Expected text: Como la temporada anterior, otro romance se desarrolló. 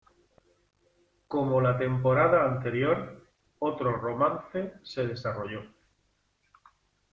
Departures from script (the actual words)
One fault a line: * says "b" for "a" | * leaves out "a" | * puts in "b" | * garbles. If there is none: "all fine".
all fine